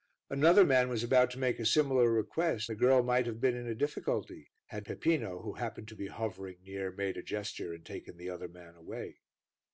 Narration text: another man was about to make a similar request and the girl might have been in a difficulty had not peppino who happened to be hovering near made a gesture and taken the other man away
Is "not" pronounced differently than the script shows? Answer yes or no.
yes